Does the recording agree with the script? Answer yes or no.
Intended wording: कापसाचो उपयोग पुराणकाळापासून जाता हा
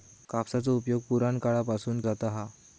yes